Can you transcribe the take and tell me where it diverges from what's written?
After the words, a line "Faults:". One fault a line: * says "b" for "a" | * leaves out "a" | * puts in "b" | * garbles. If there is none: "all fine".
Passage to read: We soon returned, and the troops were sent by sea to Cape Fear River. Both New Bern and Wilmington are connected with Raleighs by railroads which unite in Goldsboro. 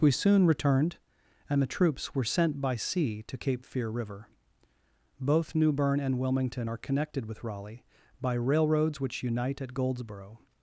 We soon returned, and the troops were sent by sea to Cape Fear River. Both New Bern and Wilmington are connected with Raleigh by railroads which unite at Goldsboro.
Faults:
* says "Raleigh" for "Raleighs"
* says "at" for "in"